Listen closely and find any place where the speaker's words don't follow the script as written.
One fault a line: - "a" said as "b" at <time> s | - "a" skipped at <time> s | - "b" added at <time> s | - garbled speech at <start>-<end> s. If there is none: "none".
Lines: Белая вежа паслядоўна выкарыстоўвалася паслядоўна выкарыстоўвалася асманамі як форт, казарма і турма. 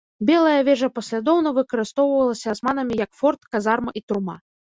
- "паслядоўна выкарыстоўвалася" skipped at 2.5 s